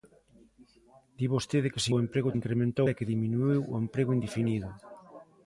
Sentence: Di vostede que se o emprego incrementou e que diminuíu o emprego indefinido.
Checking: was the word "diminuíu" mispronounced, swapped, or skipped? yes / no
no